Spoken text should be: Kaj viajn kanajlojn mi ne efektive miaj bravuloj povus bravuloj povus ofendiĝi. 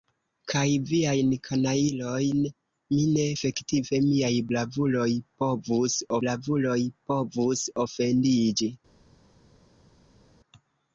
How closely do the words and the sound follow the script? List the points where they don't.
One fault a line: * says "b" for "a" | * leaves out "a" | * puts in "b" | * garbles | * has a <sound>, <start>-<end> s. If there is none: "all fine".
all fine